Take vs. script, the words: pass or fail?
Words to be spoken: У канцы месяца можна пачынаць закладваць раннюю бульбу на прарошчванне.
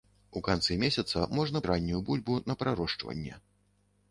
fail